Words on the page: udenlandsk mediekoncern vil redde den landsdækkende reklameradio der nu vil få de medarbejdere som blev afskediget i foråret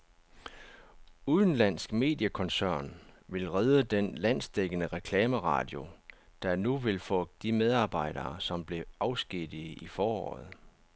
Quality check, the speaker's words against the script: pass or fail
pass